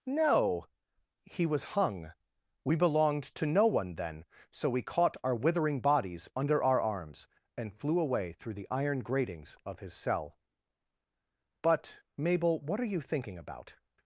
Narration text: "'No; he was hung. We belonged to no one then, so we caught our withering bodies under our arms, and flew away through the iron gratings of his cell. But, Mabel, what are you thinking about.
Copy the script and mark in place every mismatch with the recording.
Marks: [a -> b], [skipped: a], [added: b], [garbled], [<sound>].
"'No; he was hung. We belonged to no one then, so we caught our withering bodies under our arms, and flew away through the iron gratings of his cell. But, Mabel, what are you thinking about.